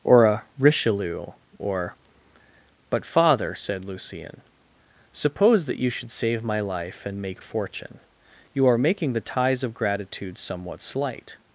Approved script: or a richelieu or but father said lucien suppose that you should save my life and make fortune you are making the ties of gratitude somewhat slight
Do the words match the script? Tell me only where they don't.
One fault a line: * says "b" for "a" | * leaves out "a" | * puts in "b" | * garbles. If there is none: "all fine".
all fine